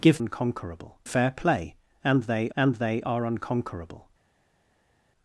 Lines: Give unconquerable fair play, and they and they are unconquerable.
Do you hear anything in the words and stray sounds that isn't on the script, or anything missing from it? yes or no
no